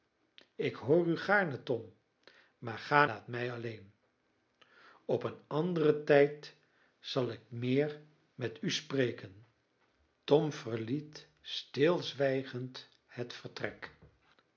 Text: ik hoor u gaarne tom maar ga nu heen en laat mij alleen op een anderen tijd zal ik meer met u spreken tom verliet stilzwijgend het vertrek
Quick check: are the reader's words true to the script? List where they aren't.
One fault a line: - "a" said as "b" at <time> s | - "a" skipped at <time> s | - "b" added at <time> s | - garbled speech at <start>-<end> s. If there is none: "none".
- "nu heen en" skipped at 3.0 s